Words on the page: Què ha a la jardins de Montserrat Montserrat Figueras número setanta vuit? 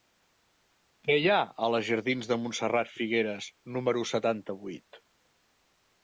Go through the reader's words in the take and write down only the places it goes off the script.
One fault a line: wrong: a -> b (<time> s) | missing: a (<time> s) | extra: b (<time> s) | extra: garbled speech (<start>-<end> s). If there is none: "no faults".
extra: hi (1.2 s)
missing: Montserrat (2.9 s)